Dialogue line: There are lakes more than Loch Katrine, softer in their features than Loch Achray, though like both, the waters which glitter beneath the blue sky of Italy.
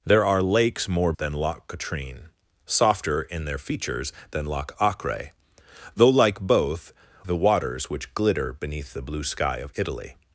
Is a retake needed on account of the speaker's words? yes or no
no